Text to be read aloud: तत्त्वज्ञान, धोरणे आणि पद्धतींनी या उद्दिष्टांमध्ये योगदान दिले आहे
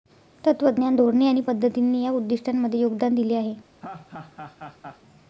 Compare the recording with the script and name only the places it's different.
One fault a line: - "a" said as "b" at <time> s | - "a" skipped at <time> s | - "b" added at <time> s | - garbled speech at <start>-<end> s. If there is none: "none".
none